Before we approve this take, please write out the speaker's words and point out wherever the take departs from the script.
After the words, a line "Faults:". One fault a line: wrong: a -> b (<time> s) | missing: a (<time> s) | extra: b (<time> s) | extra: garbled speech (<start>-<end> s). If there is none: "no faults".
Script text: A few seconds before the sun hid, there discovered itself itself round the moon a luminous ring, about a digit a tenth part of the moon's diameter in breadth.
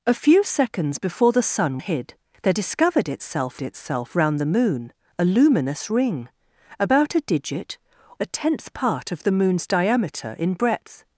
A few seconds before the sun hid, there discovered itself itself round the moon a luminous ring, about a digit a tenth part of the moon's diameter in breadth.
Faults:
no faults